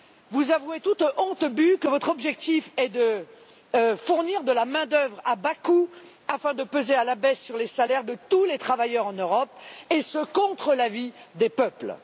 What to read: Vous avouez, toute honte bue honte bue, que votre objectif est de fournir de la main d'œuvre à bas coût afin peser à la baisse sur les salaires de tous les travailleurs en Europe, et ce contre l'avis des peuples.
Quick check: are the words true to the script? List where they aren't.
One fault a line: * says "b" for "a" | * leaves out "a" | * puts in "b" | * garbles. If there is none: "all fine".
* leaves out "honte bue"
* puts in "de"